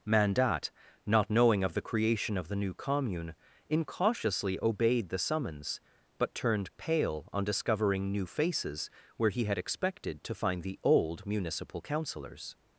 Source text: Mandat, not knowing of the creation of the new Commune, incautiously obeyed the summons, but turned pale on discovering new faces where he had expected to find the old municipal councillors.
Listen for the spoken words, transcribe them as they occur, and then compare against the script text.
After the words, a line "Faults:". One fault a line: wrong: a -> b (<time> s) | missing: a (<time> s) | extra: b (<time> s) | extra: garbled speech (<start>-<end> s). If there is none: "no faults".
Mandat, not knowing of the creation of the new Commune, incautiously obeyed the summons, but turned pale on discovering new faces where he had expected to find the old municipal councillors.
Faults:
no faults